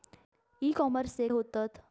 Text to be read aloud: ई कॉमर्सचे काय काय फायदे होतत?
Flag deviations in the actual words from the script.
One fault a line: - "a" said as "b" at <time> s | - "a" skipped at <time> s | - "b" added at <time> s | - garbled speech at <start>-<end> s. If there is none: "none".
- "काय काय फायदे" skipped at 1.3 s